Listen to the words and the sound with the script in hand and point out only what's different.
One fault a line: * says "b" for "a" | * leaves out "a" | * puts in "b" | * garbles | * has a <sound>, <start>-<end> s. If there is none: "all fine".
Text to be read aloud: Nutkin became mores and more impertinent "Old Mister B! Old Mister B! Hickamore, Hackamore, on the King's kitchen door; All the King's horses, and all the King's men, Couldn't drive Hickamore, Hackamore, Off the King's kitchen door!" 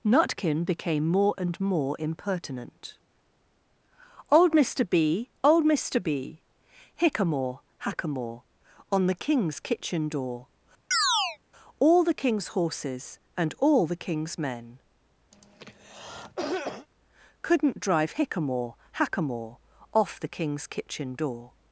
* says "more" for "mores"
* has a chirp, 10.9-11.4 s
* has a cough, 15.3-16.9 s